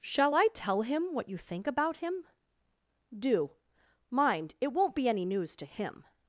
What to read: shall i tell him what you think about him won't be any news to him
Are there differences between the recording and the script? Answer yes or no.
yes